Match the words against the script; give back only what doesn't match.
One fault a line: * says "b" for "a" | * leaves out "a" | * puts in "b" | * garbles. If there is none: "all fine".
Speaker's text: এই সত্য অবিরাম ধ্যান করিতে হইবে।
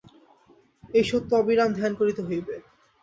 all fine